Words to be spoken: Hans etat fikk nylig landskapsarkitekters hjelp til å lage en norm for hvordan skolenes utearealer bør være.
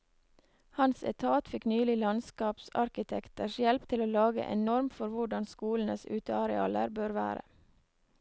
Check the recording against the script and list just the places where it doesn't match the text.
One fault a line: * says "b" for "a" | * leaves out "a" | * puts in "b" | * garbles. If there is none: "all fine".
all fine